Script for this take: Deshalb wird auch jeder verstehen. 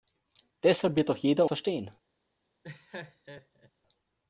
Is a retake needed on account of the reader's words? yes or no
no